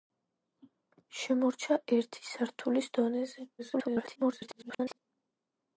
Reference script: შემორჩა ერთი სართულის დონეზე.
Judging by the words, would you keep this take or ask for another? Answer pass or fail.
fail